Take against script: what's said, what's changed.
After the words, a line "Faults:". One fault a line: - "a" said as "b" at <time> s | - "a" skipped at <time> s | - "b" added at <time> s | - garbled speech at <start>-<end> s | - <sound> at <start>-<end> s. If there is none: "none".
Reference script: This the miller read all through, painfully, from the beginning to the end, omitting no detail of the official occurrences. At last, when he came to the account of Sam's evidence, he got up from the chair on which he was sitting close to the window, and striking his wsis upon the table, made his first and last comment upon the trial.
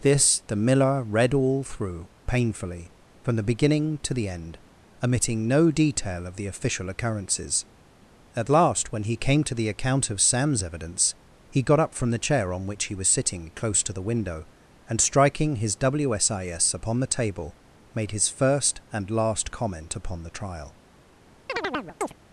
This the miller read all through, painfully, from the beginning to the end, omitting no detail of the official occurrences. At last, when he came to the account of Sam's evidence, he got up from the chair on which he was sitting close to the window, and striking his wsis upon the table, made his first and last comment upon the trial.
Faults:
- chirp at 21.5-22.1 s